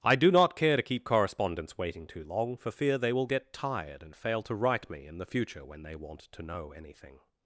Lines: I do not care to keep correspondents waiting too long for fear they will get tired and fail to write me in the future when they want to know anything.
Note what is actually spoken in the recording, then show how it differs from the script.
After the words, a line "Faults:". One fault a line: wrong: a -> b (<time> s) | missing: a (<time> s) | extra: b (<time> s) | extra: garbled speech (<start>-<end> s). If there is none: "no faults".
I do not care to keep correspondents waiting too long for fear they will get tired and fail to write me in the future when they want to know anything.
Faults:
no faults